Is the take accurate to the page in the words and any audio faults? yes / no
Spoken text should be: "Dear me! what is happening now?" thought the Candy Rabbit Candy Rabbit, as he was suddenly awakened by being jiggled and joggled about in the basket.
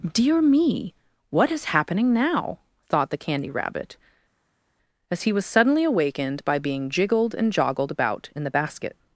no